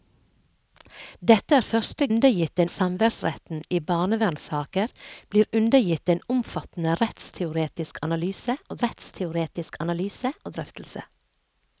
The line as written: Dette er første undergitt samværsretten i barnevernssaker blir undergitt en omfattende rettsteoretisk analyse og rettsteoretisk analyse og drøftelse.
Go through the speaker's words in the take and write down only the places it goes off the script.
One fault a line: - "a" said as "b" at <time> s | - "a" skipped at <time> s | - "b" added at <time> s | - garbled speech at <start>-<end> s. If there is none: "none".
none